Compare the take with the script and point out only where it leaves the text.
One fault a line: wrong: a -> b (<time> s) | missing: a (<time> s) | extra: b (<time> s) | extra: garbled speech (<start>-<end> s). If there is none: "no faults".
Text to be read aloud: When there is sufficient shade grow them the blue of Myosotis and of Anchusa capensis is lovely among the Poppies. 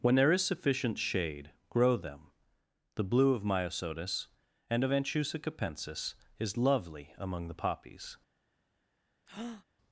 no faults